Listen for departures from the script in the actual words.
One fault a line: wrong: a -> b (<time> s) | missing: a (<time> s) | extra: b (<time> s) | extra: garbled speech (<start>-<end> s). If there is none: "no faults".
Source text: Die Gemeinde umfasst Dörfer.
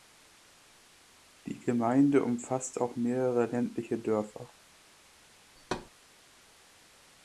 extra: auch mehrere ländliche (2.8 s)